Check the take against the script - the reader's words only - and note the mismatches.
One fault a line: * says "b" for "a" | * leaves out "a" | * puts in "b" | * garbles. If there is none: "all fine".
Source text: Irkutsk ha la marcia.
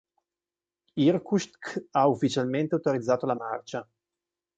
* puts in "ufficialmente autorizzato"